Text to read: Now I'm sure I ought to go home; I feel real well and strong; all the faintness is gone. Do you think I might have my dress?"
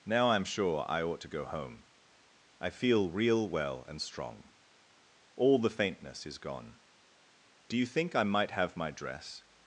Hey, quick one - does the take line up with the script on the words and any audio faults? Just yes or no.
yes